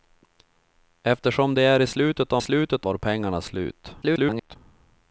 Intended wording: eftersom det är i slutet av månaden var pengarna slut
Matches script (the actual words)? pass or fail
fail